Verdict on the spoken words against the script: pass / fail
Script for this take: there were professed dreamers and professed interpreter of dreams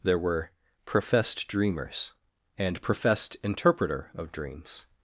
pass